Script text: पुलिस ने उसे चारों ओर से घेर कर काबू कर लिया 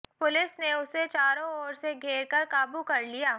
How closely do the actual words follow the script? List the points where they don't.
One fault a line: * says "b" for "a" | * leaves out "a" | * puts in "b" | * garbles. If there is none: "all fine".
all fine